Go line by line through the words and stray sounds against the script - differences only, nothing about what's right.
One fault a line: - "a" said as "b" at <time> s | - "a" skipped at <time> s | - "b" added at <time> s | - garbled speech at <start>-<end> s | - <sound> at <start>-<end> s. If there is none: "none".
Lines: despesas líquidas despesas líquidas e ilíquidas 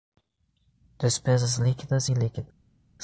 - "despesas líquidas" skipped at 2.1 s